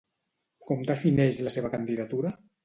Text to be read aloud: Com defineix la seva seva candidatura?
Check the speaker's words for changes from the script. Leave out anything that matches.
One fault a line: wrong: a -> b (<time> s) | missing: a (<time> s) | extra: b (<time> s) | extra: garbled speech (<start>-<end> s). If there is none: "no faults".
missing: seva (1.7 s)